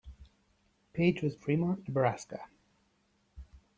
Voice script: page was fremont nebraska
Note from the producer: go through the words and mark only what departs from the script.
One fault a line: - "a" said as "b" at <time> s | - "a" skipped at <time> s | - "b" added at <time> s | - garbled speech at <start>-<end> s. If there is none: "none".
none